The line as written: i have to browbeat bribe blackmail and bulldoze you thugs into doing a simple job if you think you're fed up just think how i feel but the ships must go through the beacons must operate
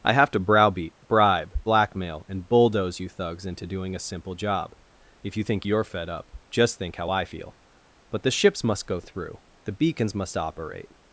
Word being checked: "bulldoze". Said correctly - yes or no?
yes